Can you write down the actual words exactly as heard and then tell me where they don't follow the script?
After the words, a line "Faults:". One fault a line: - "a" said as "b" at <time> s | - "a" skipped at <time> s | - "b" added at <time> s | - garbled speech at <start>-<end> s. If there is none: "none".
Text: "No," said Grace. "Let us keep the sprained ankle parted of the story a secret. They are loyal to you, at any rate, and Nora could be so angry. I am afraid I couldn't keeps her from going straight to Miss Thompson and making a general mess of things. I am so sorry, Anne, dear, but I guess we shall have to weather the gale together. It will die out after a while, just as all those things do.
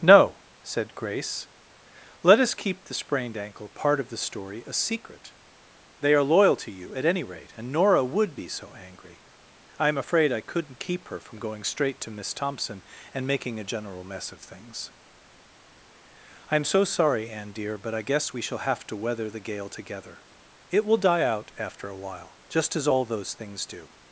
"No," said Grace. "Let us keep the sprained ankle part of the story a secret. They are loyal to you, at any rate, and Nora would be so angry. I am afraid I couldn't keep her from going straight to Miss Thompson and making a general mess of things. I am so sorry, Anne, dear, but I guess we shall have to weather the gale together. It will die out after a while, just as all those things do.
Faults:
- "parted" said as "part" at 3.7 s
- "could" said as "would" at 8.0 s
- "keeps" said as "keep" at 10.8 s